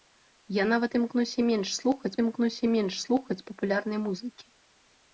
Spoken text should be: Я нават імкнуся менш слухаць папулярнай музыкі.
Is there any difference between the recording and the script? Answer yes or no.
yes